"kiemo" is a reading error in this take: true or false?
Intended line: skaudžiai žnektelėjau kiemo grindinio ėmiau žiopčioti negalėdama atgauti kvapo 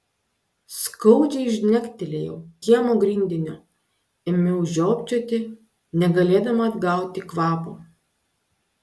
false